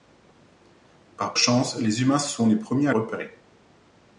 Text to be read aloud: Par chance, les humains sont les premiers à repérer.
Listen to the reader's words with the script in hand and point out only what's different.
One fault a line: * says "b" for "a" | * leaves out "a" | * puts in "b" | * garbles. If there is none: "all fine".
all fine